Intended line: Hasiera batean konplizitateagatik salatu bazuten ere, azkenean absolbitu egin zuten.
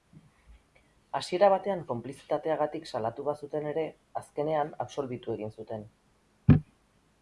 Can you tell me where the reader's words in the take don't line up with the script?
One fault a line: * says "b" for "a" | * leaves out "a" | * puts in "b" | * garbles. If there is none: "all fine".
all fine